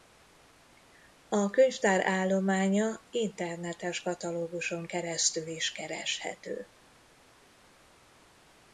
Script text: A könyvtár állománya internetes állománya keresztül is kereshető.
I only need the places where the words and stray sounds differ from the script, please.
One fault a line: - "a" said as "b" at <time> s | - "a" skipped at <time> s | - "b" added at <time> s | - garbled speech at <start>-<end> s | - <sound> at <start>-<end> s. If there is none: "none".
- "állománya" said as "katalóguson" at 4.0 s